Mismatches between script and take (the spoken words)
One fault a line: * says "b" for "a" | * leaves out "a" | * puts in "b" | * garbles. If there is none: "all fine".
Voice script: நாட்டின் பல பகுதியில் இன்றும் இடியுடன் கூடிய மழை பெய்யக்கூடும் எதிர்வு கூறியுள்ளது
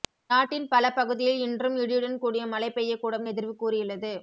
all fine